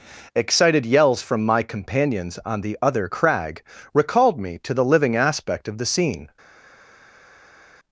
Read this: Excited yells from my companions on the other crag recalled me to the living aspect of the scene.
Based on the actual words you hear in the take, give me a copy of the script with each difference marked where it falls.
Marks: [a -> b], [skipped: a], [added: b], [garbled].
Excited yells from my companions on the other crag recalled me to the living aspect of the scene.